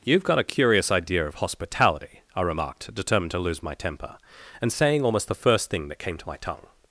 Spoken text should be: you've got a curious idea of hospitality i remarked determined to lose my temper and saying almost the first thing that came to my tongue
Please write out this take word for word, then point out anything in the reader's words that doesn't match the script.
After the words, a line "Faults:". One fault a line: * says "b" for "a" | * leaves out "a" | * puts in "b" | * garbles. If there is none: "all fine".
you've got a curious idea of hospitality i remarked determined to lose my temper and saying almost the first thing that came to my tongue
Faults:
all fine